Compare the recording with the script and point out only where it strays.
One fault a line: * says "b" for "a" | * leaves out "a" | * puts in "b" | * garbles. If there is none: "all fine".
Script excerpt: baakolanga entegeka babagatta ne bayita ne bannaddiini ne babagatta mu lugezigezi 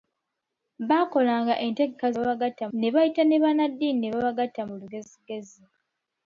all fine